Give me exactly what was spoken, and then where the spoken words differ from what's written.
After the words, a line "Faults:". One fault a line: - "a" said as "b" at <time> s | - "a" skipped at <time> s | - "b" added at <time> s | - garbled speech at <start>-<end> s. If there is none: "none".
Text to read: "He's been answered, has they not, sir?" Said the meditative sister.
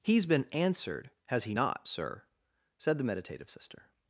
"He's been answered, has he not, sir?" Said the meditative sister.
Faults:
- "they" said as "he" at 1.4 s